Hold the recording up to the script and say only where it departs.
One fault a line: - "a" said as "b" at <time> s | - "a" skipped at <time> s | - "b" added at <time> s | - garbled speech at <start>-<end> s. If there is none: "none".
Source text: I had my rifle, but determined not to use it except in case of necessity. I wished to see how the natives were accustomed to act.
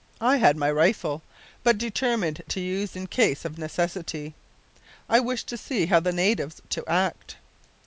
- "not" skipped at 2.4 s
- "it except" skipped at 3.0 s
- "were accustomed" skipped at 6.6 s